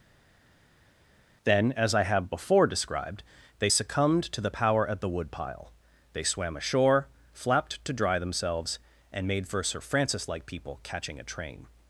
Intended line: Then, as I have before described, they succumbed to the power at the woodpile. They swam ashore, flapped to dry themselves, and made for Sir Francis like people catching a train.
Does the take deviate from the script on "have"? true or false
false